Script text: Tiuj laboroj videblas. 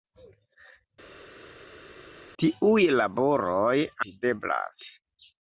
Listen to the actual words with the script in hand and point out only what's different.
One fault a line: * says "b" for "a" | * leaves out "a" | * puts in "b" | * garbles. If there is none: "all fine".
all fine